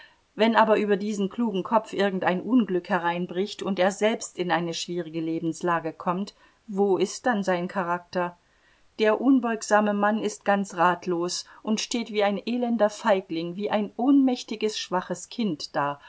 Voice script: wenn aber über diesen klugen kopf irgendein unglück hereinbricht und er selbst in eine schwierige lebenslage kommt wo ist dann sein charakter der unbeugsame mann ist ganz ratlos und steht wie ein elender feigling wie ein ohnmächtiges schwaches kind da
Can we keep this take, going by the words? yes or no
yes